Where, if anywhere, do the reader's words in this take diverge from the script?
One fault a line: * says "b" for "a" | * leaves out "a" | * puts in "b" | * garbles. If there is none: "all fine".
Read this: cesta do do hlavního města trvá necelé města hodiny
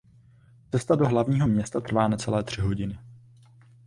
* leaves out "do"
* says "tři" for "města"